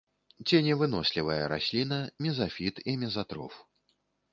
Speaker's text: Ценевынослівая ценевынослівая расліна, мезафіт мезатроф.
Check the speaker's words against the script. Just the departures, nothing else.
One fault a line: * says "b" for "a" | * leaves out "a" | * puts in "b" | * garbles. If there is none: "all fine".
* leaves out "ценевынослівая"
* puts in "і"